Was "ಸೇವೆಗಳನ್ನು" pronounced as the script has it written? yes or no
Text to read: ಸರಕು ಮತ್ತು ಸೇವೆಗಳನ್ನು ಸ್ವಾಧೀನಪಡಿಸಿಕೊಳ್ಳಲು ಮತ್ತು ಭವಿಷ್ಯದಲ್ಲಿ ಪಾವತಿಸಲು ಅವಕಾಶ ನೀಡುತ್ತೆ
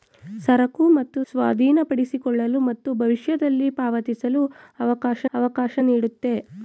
no